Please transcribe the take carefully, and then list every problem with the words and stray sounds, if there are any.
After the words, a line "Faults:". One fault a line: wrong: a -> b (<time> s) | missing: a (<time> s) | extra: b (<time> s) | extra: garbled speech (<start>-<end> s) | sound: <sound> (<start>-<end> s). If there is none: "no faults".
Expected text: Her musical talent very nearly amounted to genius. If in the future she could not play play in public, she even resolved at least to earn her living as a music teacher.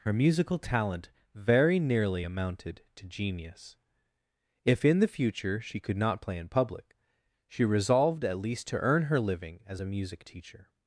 Her musical talent very nearly amounted to genius. If in the future she could not play in public, she resolved at least to earn her living as a music teacher.
Faults:
missing: play (6.4 s)
missing: even (7.6 s)